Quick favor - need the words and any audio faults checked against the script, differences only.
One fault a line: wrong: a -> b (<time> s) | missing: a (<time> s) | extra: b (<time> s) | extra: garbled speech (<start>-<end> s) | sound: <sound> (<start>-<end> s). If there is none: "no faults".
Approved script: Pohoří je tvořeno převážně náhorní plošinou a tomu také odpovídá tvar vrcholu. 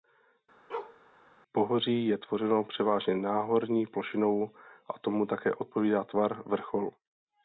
sound: bark (0.7-1.0 s)